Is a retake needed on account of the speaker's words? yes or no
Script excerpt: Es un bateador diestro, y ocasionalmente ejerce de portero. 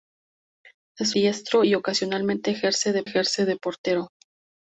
yes